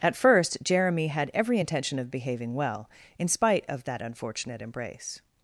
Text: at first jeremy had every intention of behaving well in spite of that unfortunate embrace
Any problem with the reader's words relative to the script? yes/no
no